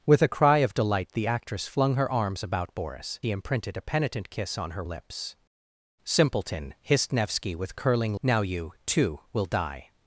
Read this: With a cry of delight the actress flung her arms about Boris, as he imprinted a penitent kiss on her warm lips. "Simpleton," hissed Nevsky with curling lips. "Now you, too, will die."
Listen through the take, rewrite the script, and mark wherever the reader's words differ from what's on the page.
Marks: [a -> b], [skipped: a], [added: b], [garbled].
With a cry of delight the actress flung her arms about Boris, [skipped: as] he imprinted a penitent kiss on her [skipped: warm] lips. "Simpleton," hissed Nevsky with curling [skipped: lips.] "Now you, too, will die."